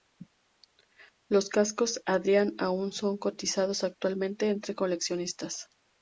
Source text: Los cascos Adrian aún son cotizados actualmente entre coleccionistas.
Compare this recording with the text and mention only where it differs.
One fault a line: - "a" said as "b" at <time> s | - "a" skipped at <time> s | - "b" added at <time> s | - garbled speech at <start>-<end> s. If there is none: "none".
none